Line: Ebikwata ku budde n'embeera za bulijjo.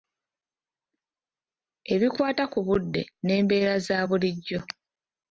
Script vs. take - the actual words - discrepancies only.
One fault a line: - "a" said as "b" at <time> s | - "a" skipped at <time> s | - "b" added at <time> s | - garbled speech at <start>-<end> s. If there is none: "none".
none